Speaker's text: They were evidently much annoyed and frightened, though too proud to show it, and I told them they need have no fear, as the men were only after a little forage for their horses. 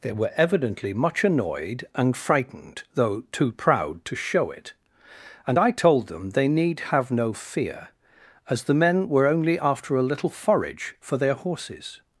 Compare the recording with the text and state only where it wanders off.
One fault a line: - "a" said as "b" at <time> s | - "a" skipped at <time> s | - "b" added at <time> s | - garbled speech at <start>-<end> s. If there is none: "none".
none